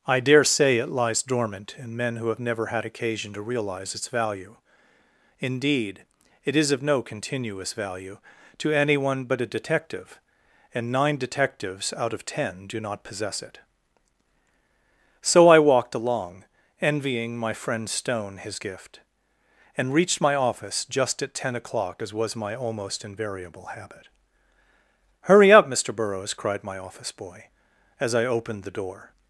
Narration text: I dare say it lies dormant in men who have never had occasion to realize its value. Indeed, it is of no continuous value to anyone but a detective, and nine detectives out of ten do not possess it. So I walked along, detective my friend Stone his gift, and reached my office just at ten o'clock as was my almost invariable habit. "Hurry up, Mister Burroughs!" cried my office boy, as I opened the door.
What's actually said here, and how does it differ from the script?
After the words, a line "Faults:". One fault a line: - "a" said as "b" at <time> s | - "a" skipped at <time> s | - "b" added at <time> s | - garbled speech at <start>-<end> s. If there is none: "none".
I dare say it lies dormant in men who have never had occasion to realize its value. Indeed, it is of no continuous value to anyone but a detective, and nine detectives out of ten do not possess it. So I walked along, envying my friend Stone his gift, and reached my office just at ten o'clock as was my almost invariable habit. "Hurry up, Mister Burroughs!" cried my office boy, as I opened the door.
Faults:
- "detective" said as "envying" at 16.8 s